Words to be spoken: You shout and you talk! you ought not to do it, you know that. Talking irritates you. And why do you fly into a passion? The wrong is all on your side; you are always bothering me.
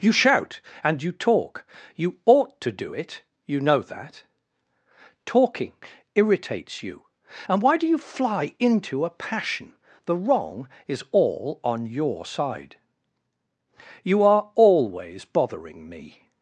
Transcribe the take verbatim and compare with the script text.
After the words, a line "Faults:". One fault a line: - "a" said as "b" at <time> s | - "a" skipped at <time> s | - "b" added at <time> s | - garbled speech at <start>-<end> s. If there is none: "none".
You shout and you talk! you ought to do it, you know that. Talking irritates you. And why do you fly into a passion? The wrong is all on your side; you are always bothering me.
Faults:
- "not" skipped at 2.6 s